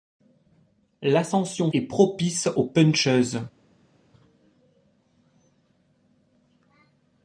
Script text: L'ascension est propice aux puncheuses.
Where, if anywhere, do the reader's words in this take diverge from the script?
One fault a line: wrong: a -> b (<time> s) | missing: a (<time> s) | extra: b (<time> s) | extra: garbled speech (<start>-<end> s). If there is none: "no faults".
no faults